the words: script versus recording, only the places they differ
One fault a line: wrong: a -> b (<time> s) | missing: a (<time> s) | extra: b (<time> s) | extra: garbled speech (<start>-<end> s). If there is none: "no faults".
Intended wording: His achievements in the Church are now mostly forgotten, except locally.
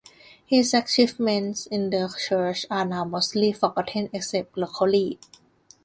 no faults